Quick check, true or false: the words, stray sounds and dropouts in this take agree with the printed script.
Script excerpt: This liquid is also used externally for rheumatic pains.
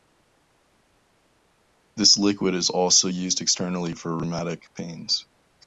true